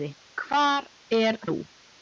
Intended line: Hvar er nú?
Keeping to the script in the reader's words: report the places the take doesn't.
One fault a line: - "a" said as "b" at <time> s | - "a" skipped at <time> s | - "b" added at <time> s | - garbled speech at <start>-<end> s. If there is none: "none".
none